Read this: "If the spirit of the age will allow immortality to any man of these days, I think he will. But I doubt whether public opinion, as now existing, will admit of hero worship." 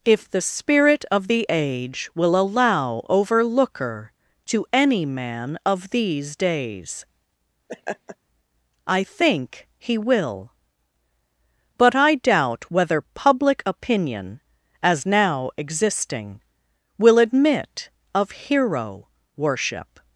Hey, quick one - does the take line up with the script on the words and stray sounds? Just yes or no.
no